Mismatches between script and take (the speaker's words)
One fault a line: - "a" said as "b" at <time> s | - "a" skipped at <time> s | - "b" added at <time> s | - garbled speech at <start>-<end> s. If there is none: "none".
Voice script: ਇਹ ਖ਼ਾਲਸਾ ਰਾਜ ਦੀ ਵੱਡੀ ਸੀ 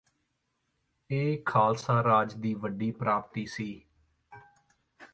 - "ਪ੍ਰਾਪਤੀ" added at 2.9 s